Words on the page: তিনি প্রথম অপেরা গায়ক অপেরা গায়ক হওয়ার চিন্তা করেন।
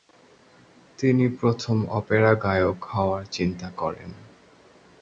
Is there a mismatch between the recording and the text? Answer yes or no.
yes